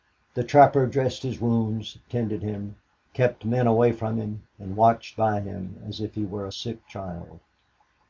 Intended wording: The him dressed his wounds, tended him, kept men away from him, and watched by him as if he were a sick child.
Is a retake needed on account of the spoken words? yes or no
yes